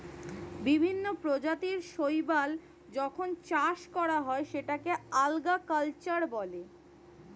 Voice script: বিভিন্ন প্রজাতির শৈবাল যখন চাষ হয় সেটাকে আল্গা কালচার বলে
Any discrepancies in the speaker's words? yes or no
yes